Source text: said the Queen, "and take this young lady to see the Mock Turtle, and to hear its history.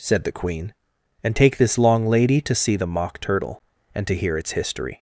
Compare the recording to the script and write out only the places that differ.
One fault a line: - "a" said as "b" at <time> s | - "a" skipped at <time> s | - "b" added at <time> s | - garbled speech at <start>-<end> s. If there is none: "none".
- "young" said as "long" at 1.8 s